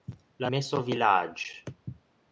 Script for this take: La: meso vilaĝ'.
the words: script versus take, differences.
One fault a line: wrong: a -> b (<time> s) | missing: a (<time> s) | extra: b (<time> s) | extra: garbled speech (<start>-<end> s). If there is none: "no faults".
no faults